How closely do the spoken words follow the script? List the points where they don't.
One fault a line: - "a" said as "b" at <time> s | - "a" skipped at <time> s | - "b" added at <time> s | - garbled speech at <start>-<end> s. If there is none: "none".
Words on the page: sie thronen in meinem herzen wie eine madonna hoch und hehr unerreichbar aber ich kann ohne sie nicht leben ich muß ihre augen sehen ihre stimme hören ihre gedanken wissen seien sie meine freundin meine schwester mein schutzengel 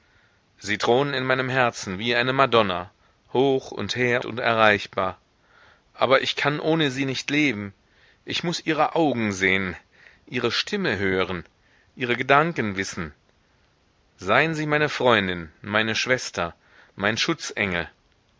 none